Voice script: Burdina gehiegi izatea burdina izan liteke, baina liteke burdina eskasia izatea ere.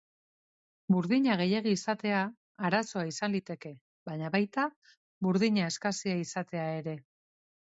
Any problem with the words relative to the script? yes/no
yes